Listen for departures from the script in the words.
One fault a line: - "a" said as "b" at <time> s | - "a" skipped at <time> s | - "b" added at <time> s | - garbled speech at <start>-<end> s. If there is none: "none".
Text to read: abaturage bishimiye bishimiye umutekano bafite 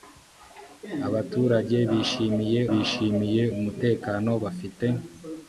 none